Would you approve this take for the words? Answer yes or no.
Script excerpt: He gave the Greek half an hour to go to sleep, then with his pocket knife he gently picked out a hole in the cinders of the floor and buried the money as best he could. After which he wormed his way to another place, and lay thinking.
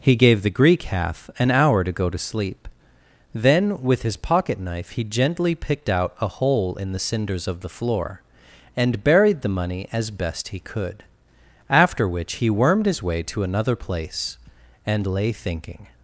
yes